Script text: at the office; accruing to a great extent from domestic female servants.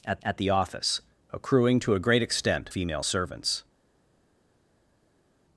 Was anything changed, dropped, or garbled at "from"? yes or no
yes